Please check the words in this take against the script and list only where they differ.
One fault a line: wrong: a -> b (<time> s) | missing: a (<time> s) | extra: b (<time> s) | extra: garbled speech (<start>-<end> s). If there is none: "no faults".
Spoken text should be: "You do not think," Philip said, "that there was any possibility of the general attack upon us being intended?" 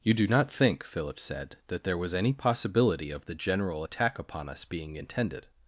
no faults